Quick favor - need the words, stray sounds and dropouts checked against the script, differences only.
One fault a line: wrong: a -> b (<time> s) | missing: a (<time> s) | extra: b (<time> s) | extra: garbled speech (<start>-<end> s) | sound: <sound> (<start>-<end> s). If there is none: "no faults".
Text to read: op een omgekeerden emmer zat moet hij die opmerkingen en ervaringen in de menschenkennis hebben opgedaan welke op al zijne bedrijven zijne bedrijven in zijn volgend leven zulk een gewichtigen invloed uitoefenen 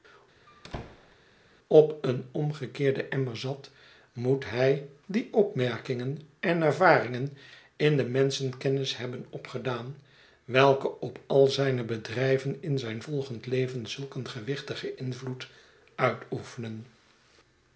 sound: squeak (0.5-1.2 s)
missing: zijne bedrijven (12.6 s)